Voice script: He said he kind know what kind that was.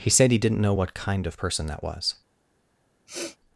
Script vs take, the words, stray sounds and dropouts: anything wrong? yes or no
yes